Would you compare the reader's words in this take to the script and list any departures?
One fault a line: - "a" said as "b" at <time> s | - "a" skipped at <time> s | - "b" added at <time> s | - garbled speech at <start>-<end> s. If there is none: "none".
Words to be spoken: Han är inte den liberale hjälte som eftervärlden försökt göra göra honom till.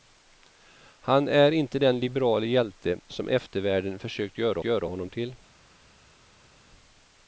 none